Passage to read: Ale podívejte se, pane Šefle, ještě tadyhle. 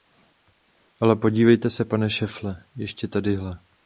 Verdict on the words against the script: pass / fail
pass